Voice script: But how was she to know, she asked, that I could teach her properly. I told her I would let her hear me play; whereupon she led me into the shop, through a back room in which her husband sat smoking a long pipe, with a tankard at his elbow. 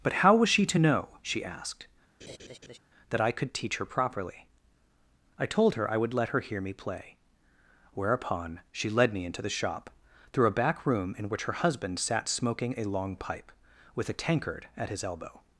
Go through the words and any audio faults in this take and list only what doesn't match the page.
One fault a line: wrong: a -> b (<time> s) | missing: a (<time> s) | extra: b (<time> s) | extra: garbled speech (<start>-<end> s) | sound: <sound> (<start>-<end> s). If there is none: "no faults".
sound: laugh (2.2-2.8 s)